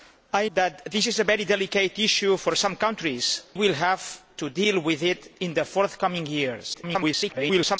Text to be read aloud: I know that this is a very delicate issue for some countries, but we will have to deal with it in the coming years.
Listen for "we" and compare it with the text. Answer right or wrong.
wrong